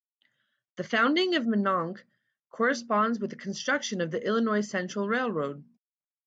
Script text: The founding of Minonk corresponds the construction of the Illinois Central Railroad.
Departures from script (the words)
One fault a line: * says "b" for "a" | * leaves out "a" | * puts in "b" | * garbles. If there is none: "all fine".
* puts in "with"